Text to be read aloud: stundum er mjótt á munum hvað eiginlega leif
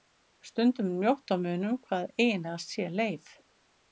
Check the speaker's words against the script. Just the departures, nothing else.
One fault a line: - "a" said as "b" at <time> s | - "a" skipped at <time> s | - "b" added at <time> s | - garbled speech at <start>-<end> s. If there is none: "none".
- "sé" added at 2.6 s